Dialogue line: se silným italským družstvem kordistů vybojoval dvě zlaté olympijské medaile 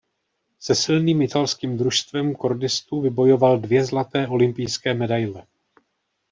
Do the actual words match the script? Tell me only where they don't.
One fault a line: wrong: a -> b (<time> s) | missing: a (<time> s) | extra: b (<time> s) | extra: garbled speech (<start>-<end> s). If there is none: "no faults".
no faults